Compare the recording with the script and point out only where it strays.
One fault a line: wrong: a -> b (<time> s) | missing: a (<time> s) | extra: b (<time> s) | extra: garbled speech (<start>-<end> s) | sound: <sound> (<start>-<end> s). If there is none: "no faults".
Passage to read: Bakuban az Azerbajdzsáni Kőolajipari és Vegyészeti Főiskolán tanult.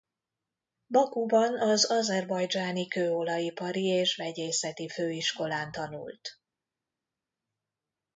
no faults